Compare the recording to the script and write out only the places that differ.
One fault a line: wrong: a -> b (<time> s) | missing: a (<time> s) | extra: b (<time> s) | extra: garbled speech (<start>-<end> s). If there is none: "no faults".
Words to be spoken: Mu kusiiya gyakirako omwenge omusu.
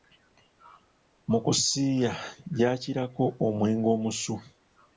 no faults